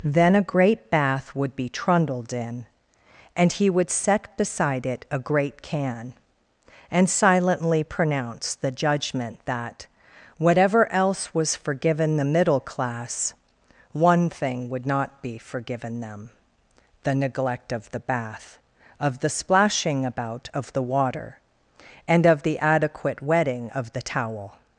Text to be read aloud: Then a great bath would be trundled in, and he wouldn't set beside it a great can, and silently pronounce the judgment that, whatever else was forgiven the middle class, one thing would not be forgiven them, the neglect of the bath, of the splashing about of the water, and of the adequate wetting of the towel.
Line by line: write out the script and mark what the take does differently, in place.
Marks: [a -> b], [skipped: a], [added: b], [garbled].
Then a great bath would be trundled in, and he [wouldn't -> would] set beside it a great can, and silently pronounce the judgment that, whatever else was forgiven the middle class, one thing would not be forgiven them, the neglect of the bath, of the splashing about of the water, and of the adequate wetting of the towel.